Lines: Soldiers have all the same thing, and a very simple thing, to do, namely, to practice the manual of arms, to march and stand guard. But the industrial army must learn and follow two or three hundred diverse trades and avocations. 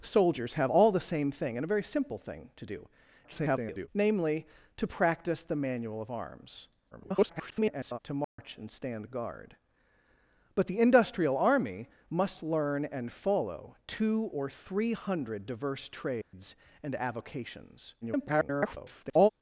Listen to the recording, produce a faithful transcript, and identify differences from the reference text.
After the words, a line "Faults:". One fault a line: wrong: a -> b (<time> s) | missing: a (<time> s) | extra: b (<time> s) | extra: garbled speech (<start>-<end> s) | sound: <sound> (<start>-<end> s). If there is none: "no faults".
Soldiers have all the same thing, and a very simple thing, to do, [garbled] namely, to practice the manual of arms, [garbled] to march and stand guard. But the industrial army must learn and follow two or three hundred diverse trades and avocations. [garbled]
Faults:
extra: garbled speech (3.2-3.9 s)
extra: garbled speech (6.9-8.0 s)
sound: dropout (8.2-8.4 s)
sound: dropout (16.2-16.3 s)
extra: garbled speech (18.0-19.3 s)